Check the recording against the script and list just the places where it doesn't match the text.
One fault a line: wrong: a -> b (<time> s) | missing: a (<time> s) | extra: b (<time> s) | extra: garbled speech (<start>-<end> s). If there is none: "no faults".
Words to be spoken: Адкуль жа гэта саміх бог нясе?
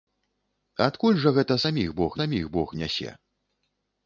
extra: саміх бог (2.2 s)